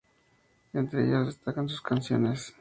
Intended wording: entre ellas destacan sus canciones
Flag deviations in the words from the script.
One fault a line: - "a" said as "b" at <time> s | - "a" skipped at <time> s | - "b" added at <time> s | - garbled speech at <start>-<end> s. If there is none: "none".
none